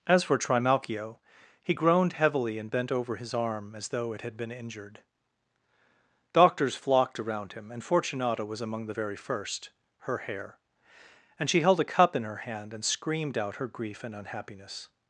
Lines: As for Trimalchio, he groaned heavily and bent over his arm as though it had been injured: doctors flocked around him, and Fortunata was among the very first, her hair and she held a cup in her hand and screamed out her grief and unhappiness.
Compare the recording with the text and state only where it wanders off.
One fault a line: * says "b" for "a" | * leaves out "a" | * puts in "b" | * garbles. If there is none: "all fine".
all fine